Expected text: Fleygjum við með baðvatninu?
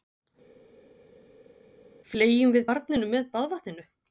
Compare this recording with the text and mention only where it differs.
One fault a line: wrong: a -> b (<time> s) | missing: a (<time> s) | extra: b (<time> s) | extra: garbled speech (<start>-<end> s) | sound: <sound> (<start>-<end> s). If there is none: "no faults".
extra: barninu (2.7 s)